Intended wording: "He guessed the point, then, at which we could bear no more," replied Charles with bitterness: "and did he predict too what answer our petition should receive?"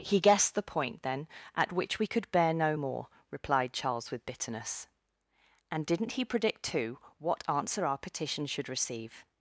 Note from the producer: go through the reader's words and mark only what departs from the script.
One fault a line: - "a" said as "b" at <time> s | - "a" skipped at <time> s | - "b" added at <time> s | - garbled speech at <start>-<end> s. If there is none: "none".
- "did" said as "didn't" at 5.8 s